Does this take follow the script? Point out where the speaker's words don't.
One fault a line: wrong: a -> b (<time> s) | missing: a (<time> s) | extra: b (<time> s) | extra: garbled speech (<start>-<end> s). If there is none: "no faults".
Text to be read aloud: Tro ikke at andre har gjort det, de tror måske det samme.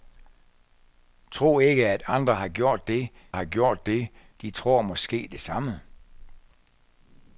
extra: har gjort det (3.3 s)